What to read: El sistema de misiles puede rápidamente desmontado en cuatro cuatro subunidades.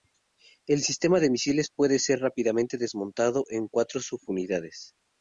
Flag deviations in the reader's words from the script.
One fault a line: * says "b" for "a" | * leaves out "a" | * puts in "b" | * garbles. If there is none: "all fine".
* puts in "ser"
* leaves out "cuatro"